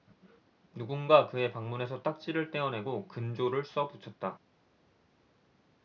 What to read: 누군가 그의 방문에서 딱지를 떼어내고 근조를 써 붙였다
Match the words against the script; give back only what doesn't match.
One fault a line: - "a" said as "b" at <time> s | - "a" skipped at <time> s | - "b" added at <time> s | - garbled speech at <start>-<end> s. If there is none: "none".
none